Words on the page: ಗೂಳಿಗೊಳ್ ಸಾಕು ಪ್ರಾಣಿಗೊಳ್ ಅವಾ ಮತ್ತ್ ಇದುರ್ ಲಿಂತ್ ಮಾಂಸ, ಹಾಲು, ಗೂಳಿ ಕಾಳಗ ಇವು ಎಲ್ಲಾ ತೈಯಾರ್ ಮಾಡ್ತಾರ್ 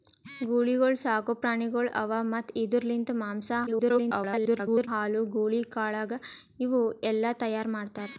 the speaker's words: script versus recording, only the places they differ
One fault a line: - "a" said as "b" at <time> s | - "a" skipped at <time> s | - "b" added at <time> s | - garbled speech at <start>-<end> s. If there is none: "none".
- garbled speech at 3.7-4.9 s